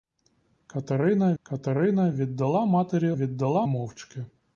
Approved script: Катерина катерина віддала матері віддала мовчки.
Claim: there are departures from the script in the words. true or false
false